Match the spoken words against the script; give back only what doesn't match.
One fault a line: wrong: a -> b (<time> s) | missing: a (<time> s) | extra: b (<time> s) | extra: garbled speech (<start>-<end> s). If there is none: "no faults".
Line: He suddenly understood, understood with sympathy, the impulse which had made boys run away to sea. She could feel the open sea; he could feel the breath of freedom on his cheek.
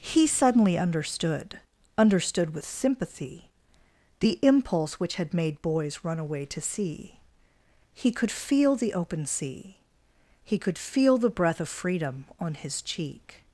wrong: She -> He (7.9 s)